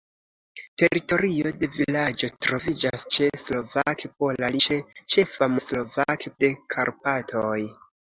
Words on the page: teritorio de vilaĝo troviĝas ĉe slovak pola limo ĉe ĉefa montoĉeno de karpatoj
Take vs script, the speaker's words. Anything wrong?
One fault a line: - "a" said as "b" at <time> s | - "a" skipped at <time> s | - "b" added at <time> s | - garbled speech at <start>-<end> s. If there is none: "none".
- "limo" skipped at 4.5 s
- "montoĉeno" said as "slovak" at 5.7 s